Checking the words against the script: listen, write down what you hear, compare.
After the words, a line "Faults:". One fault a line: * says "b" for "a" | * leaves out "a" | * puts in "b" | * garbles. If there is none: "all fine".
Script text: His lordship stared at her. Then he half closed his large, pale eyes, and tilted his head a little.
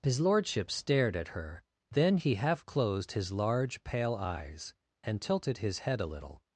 His lordship stared at her. Then he half closed his large, pale eyes, and tilted his head a little.
Faults:
all fine